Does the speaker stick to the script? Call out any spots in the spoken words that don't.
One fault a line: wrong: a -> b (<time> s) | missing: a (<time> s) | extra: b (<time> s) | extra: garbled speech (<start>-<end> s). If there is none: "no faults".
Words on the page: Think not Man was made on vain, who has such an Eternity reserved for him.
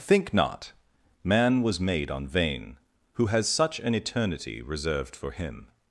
no faults